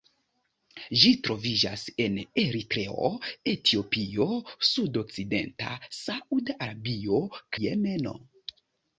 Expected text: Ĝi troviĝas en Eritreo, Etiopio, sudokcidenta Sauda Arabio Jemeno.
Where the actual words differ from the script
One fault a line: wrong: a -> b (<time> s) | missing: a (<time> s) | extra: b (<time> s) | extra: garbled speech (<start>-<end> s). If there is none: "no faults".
no faults